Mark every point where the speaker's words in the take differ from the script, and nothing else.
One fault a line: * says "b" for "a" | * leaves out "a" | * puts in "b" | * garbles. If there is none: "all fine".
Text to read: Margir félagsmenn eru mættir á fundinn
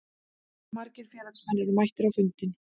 all fine